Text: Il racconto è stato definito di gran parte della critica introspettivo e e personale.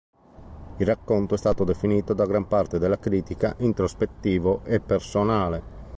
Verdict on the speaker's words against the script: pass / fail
fail